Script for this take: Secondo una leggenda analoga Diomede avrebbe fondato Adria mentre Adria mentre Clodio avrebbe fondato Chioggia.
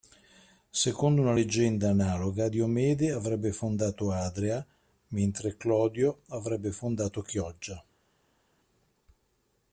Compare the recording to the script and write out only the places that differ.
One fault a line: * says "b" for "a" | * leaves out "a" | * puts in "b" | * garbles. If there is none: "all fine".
* leaves out "Adria mentre"